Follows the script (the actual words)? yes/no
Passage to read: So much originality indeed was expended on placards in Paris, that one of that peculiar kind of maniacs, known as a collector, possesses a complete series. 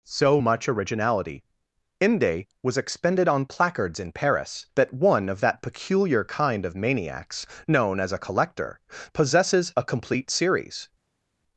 no